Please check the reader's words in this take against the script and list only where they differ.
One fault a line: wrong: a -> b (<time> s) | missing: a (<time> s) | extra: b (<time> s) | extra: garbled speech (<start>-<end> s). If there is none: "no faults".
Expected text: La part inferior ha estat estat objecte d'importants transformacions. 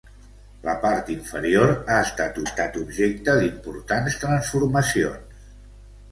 no faults